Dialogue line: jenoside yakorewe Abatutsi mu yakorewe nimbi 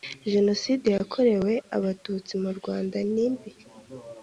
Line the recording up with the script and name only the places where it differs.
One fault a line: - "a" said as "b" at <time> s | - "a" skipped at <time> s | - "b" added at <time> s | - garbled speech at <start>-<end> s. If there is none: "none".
- "yakorewe" said as "rwanda" at 2.6 s